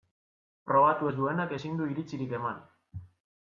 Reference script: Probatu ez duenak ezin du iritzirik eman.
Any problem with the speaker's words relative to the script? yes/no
no